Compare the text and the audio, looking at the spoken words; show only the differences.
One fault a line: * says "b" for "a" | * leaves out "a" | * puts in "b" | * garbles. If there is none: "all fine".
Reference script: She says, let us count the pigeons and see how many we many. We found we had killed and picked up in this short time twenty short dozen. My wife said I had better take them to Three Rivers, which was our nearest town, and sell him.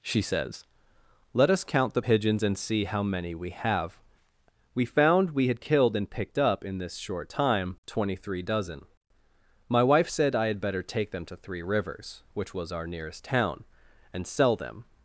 * says "have" for "many"
* says "three" for "short"
* says "them" for "him"